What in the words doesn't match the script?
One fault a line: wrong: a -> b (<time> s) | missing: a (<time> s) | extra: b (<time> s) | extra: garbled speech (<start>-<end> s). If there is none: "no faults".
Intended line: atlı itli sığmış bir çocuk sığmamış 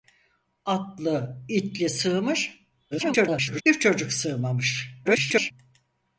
extra: garbled speech (2.9-3.6 s)
extra: garbled speech (5.0-5.5 s)